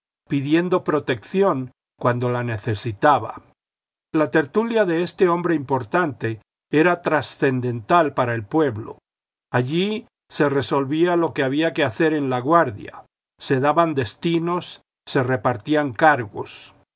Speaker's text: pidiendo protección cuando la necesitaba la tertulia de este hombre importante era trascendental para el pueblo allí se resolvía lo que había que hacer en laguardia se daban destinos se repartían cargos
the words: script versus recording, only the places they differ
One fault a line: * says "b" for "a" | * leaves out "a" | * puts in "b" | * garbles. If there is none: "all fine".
all fine